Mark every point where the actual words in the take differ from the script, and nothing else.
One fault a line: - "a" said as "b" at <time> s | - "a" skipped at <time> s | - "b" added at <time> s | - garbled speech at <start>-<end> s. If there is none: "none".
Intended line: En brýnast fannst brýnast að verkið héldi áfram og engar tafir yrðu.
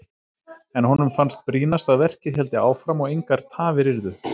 - "brýnast" said as "honum" at 0.9 s